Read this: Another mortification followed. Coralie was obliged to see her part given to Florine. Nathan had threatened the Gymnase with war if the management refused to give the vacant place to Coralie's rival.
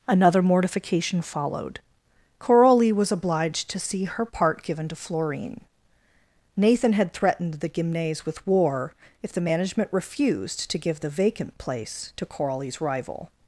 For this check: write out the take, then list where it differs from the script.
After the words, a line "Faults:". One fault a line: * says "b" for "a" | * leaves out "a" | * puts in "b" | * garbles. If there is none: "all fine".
Another mortification followed. Coralie was obliged to see her part given to Florine. Nathan had threatened the Gymnase with war if the management refused to give the vacant place to Coralie's rival.
Faults:
all fine